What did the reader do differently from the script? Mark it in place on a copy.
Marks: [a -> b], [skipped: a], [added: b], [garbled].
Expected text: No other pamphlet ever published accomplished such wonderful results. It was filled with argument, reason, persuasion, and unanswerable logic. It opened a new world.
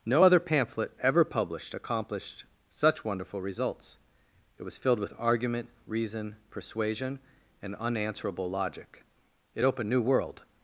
No other pamphlet ever published accomplished such wonderful results. It was filled with argument, reason, persuasion, and unanswerable logic. It opened [skipped: a] new world.